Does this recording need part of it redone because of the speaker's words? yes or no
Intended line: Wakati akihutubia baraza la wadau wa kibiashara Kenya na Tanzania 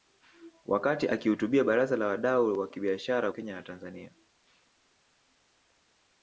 no